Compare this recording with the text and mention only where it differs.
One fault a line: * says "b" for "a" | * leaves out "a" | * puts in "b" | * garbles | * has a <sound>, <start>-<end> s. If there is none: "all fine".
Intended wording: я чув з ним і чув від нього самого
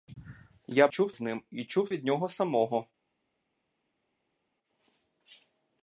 all fine